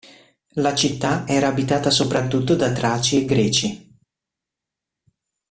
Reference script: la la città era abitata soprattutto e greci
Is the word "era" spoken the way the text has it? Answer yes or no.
yes